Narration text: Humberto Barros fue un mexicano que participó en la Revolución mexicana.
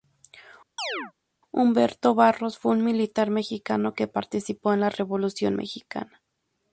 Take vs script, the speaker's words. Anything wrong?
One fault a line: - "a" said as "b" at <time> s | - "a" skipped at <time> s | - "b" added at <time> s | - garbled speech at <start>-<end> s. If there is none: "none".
- "militar" added at 2.8 s